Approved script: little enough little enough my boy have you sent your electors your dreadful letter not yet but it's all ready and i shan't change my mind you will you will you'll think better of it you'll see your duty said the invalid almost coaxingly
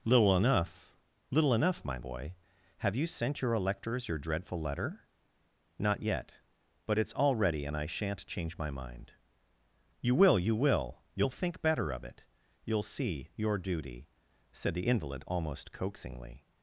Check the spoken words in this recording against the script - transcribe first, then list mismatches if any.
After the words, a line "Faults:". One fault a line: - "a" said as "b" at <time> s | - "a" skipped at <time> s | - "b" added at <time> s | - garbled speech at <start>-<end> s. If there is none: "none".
little enough little enough my boy have you sent your electors your dreadful letter not yet but it's all ready and i shan't change my mind you will you will you'll think better of it you'll see your duty said the invalid almost coaxingly
Faults:
none